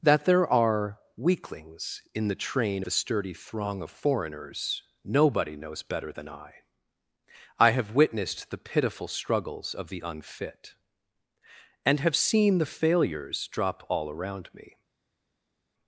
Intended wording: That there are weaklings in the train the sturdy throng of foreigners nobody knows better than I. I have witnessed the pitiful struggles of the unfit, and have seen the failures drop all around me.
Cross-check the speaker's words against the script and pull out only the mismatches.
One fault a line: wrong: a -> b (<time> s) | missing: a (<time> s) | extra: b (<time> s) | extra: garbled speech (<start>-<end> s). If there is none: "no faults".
no faults